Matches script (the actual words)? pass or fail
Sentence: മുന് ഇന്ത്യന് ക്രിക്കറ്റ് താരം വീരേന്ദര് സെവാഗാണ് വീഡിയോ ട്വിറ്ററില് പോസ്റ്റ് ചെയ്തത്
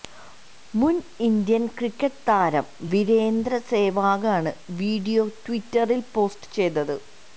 pass